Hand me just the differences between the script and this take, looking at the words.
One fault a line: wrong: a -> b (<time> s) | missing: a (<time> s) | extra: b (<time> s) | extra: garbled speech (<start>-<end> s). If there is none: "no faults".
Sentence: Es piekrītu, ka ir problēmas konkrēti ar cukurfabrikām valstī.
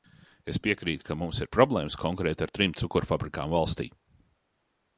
extra: mums (1.2 s)
extra: trim (2.6 s)